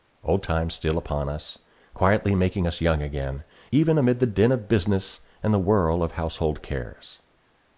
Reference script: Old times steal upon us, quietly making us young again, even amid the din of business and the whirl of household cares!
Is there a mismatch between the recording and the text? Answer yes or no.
no